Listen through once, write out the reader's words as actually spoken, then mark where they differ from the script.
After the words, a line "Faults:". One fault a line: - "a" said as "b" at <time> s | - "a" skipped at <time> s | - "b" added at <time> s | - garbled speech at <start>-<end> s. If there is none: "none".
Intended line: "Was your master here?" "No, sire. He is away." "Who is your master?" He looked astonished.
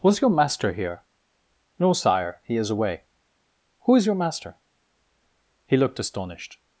"Was your master here?" "No, sire. He is away." "Who is your master?" He looked astonished.
Faults:
none